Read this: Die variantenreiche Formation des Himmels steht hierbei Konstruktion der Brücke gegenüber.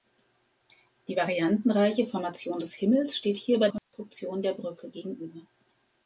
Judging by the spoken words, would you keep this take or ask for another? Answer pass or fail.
pass